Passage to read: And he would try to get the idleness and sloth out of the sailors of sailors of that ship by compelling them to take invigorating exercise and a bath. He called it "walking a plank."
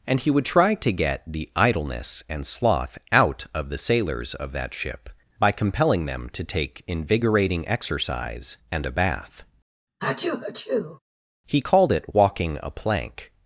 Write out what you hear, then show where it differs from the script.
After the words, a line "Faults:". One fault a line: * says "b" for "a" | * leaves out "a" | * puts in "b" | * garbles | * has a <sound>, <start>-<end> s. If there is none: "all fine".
And he would try to get the idleness and sloth out of the sailors of that ship by compelling them to take invigorating exercise and a bath. He called it "walking a plank."
Faults:
* leaves out "sailors of"
* has a sneeze, 10.0-11.0 s